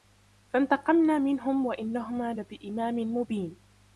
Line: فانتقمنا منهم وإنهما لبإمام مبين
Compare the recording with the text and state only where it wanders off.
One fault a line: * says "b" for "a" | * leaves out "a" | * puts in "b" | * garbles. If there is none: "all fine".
all fine